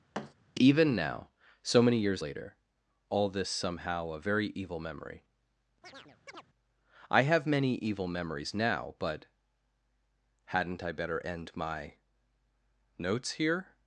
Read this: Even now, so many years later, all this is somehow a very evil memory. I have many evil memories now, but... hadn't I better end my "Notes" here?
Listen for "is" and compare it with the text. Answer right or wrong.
wrong